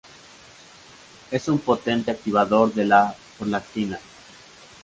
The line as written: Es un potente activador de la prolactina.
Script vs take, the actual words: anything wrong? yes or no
no